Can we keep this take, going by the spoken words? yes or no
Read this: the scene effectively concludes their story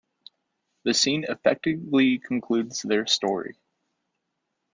yes